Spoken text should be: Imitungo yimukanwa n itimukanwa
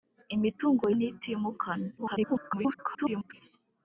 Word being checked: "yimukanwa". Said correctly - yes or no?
no